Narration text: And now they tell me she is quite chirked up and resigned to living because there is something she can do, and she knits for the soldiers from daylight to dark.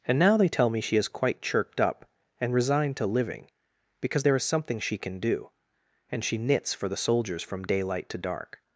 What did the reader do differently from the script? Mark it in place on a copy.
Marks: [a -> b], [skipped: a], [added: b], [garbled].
And now they tell me she is quite chirked up and resigned to living because there is something she can do, and she knits for the soldiers from daylight to dark.